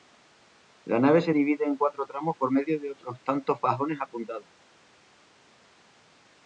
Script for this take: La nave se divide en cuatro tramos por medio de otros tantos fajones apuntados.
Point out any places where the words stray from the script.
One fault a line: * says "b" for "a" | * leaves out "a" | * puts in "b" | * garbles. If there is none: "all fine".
all fine